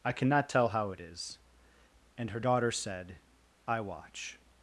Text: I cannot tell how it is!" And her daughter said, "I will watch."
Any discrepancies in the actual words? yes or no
yes